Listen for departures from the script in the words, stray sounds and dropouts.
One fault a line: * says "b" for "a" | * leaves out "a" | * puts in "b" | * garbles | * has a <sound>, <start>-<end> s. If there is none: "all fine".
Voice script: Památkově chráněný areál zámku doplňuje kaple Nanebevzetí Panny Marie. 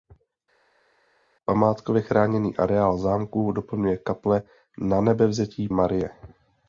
* leaves out "Panny"